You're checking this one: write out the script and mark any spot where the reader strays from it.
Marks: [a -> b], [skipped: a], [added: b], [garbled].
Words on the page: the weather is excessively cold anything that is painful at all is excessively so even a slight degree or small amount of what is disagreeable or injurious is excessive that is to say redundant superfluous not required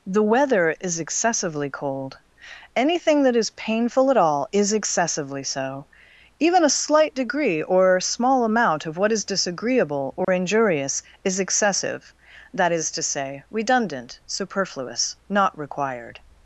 the weather is excessively cold anything that is painful at all is excessively so even a slight degree or small amount of what is disagreeable or injurious is excessive that is to say redundant superfluous not required